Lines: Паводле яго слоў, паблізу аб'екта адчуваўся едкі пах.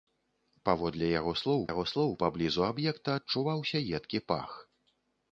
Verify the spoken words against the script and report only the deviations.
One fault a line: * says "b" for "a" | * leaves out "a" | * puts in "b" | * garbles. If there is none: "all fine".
* puts in "яго слоў"